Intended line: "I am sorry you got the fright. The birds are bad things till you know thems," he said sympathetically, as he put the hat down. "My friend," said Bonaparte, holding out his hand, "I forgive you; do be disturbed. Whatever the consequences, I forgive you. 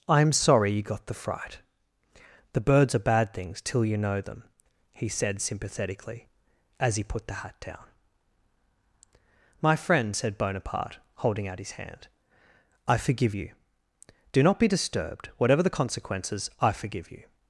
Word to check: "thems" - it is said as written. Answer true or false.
false